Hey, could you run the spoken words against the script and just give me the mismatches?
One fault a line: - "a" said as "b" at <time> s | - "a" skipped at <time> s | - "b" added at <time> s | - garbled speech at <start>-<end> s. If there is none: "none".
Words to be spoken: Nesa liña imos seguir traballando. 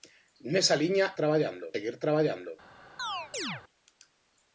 - "imos" said as "traballando" at 1.2 s